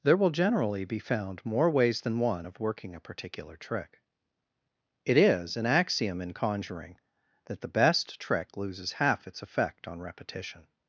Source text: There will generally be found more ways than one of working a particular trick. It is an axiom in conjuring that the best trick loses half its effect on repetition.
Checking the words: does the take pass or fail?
pass